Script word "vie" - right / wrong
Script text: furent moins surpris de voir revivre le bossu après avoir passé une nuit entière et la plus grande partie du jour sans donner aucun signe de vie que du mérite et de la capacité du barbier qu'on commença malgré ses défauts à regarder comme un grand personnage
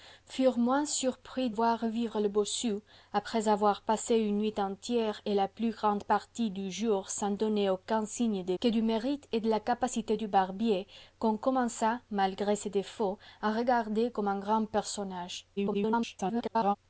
wrong